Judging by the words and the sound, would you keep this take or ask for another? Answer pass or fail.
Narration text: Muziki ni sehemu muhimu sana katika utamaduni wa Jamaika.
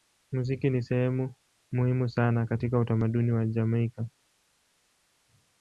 pass